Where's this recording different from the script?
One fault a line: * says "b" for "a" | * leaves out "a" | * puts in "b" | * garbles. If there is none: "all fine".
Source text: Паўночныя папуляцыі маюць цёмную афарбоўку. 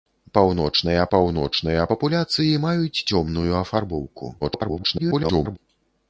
* puts in "паўночныя"
* garbles